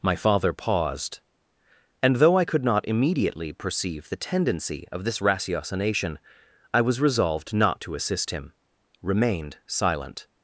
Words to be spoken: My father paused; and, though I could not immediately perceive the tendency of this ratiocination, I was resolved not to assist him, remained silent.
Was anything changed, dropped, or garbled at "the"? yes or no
no